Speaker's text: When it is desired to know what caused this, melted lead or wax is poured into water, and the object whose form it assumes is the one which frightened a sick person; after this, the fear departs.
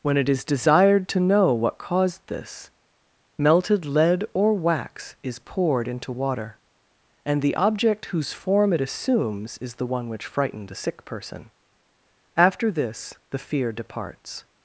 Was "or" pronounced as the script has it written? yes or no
yes